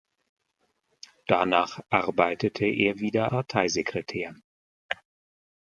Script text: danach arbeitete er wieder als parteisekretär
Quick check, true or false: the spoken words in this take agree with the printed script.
false